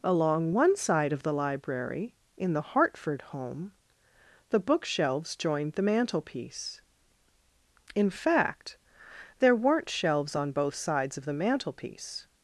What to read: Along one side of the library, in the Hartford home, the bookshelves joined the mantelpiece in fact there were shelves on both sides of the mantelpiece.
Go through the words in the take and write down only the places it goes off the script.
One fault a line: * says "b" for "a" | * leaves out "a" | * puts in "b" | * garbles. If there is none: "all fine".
* says "weren't" for "were"